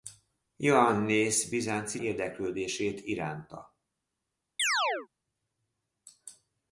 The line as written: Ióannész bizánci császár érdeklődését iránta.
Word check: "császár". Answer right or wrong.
wrong